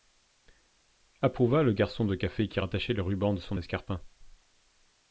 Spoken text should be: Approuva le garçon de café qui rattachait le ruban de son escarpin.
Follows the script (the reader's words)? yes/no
yes